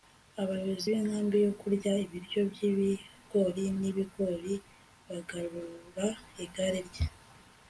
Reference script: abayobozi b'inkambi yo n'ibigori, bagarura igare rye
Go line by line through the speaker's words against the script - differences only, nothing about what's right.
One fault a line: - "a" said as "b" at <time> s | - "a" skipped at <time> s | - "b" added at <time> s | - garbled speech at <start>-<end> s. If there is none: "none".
- "kurya ibiryo by'ibigori" added at 1.6 s